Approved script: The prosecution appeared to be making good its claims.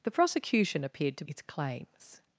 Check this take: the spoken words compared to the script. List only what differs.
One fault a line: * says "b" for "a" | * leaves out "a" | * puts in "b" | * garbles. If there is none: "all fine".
* leaves out "be making good"